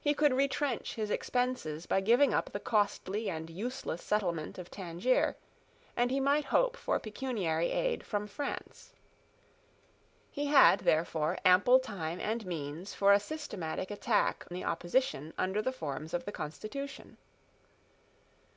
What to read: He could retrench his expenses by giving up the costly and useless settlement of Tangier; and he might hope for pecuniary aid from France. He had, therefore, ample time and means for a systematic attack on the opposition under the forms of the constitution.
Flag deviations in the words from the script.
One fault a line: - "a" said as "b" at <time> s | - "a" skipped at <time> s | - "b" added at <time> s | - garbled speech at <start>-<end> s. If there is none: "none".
- "on" skipped at 14.5 s